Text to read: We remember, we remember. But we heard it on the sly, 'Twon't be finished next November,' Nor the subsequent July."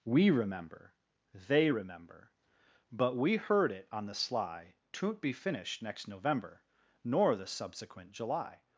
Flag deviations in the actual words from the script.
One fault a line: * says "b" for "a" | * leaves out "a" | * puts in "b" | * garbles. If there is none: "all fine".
* says "they" for "we"